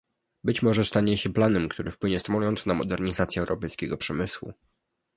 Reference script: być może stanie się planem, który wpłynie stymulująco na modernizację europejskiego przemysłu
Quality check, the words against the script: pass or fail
pass